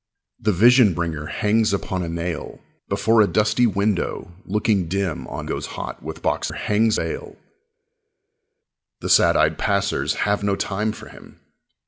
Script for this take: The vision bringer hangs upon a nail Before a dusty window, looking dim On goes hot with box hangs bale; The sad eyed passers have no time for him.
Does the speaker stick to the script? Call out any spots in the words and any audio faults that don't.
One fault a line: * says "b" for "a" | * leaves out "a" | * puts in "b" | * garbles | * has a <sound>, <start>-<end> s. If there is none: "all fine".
all fine